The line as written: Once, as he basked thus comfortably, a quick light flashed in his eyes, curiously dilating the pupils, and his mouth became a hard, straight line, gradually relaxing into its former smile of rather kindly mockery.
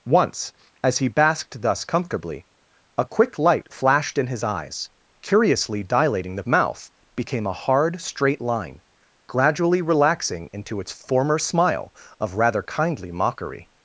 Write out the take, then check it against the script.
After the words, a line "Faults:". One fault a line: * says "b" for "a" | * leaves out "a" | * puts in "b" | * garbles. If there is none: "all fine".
Once, as he basked thus comfortably, a quick light flashed in his eyes, curiously dilating the mouth became a hard, straight line, gradually relaxing into its former smile of rather kindly mockery.
Faults:
* leaves out "pupils and his"